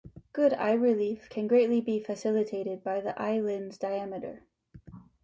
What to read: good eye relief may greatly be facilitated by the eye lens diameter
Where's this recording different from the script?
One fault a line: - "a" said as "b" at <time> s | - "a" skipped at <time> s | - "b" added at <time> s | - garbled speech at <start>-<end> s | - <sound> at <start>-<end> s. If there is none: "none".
- "may" said as "can" at 1.3 s